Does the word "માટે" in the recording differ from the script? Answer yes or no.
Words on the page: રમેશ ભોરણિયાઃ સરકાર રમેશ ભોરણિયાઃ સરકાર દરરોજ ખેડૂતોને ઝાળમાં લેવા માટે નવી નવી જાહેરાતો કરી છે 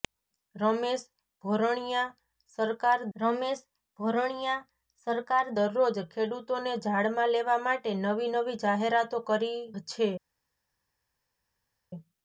no